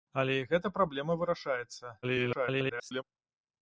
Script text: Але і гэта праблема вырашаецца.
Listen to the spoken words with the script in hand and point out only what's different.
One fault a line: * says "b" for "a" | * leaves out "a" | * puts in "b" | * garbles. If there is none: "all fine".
* garbles